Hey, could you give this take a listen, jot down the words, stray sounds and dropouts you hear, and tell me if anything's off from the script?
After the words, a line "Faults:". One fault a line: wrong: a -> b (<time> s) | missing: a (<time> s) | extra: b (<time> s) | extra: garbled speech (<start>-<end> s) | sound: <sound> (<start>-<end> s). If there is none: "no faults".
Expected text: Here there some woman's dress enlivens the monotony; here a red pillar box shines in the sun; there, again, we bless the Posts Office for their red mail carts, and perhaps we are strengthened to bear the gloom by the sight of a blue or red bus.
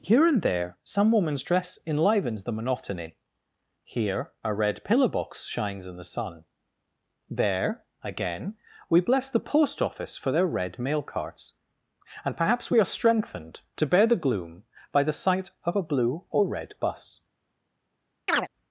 Here and there some woman's dress enlivens the monotony; here a red pillar box shines in the sun; there, again, we bless the Post Office for their red mail carts, and perhaps we are strengthened to bear the gloom by the sight of a blue or red bus.
Faults:
extra: and (0.2 s)
wrong: Posts -> Post (9.4 s)
sound: chirp (18.3-18.5 s)